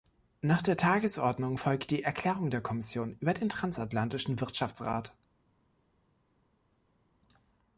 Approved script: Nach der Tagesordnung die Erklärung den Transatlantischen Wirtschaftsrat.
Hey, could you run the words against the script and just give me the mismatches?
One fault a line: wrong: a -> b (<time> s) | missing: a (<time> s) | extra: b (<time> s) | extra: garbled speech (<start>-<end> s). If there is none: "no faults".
extra: folgt (1.6 s)
extra: der Kommission über (2.5 s)